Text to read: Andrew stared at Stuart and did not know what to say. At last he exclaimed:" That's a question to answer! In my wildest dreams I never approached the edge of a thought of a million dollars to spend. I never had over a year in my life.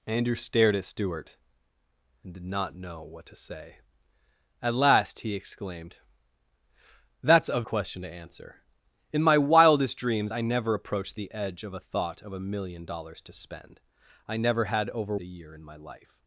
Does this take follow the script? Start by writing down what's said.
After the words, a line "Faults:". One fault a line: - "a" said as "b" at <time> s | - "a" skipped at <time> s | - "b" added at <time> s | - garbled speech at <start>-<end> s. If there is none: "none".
Andrew stared at Stuart and did not know what to say. At last he exclaimed:" That's a question to answer! In my wildest dreams I never approached the edge of a thought of a million dollars to spend. I never had over a year in my life.
Faults:
none